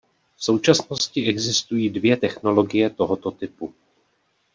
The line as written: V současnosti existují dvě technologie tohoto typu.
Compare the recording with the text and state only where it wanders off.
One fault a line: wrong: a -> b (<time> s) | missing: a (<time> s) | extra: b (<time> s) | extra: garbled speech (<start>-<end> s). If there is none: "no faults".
no faults